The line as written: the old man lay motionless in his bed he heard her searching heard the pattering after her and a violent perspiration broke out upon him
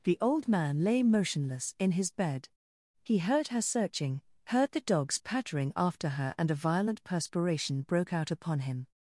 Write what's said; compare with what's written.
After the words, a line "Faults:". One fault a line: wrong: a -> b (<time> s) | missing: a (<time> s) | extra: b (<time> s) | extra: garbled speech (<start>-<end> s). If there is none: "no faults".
the old man lay motionless in his bed he heard her searching heard the dogs pattering after her and a violent perspiration broke out upon him
Faults:
extra: dogs (4.8 s)